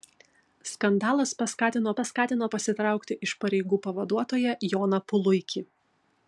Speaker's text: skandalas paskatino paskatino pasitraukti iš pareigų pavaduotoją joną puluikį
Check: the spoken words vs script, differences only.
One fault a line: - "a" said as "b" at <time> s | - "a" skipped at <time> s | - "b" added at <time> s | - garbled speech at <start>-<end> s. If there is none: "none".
none